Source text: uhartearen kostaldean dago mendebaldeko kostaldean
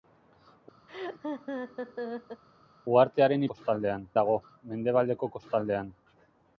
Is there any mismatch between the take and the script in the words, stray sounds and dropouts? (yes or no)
yes